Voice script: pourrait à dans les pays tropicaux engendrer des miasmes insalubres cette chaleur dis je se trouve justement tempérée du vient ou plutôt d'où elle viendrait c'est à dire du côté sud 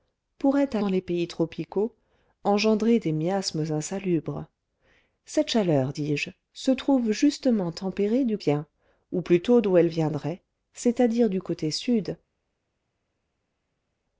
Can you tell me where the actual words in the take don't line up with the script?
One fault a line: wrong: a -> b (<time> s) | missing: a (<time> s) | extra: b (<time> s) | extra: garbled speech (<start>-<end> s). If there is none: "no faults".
no faults